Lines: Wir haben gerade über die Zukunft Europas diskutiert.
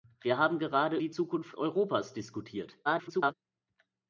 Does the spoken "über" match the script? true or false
false